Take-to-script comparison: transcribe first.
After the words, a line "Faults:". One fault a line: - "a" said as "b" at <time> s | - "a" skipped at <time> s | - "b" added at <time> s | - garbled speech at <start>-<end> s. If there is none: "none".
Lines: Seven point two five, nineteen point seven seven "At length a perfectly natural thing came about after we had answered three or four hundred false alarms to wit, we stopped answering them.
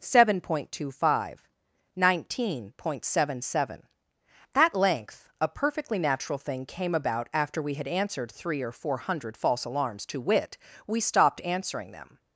Seven point two five, nineteen point seven seven "At length a perfectly natural thing came about after we had answered three or four hundred false alarms to wit, we stopped answering them.
Faults:
none